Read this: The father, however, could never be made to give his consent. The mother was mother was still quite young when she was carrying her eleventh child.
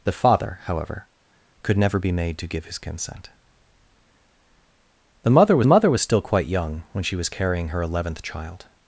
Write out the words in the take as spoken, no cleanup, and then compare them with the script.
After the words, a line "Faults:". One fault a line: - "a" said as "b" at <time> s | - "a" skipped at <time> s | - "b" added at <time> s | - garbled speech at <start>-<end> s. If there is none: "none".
The father, however, could never be made to give his consent. The mother was mother was still quite young when she was carrying her eleventh child.
Faults:
none